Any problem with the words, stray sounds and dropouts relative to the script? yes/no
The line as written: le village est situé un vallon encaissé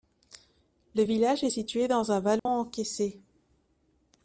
yes